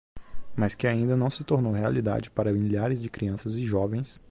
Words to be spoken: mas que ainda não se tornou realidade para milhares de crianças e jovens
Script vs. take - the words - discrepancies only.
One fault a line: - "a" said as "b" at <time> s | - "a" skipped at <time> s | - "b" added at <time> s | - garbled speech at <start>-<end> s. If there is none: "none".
none